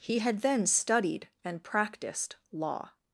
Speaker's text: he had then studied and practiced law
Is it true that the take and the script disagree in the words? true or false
false